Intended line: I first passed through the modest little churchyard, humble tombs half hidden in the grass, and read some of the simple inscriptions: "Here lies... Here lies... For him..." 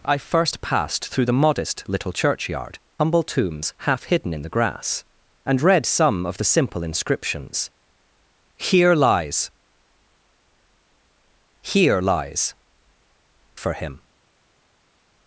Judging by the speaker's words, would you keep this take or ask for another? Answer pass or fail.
pass